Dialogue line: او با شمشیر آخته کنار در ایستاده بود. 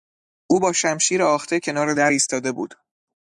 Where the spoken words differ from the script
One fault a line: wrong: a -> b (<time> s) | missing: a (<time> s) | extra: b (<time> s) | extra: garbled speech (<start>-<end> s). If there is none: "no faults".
no faults